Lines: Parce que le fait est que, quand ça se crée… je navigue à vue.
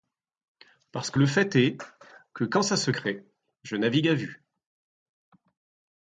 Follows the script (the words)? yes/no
yes